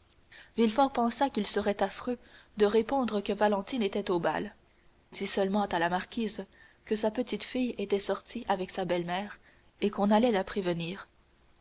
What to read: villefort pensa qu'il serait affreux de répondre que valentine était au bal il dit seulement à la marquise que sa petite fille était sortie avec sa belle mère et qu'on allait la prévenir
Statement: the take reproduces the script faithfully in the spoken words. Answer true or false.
false